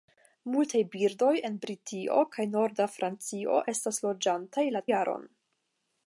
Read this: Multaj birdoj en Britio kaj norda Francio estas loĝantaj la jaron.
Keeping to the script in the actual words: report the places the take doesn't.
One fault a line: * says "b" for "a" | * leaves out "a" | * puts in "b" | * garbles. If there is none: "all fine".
all fine